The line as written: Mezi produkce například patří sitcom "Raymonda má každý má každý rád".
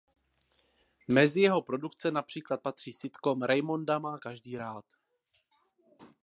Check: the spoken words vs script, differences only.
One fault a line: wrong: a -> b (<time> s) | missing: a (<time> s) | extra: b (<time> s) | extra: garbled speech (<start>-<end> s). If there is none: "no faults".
extra: jeho (1.4 s)
missing: má každý (4.6 s)